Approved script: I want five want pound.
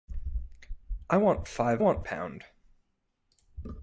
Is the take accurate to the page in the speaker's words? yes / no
yes